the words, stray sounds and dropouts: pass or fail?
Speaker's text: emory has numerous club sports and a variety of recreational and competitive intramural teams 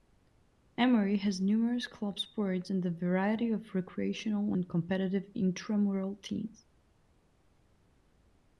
pass